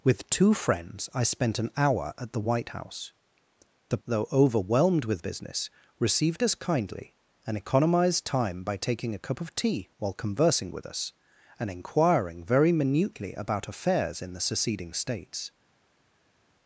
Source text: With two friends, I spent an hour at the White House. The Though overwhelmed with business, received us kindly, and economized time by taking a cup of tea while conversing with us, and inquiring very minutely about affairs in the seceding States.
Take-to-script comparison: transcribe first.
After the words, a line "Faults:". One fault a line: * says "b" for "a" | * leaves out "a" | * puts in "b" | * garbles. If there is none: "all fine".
With two friends, I spent an hour at the White House. The Though overwhelmed with business, received us kindly, and economized time by taking a cup of tea while conversing with us, and inquiring very minutely about affairs in the seceding States.
Faults:
all fine